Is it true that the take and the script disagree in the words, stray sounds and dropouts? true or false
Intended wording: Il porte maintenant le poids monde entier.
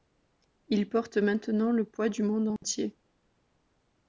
true